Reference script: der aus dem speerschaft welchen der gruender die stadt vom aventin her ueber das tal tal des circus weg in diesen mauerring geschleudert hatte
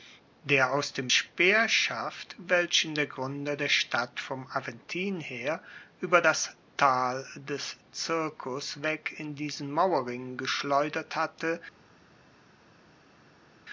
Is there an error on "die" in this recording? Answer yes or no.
yes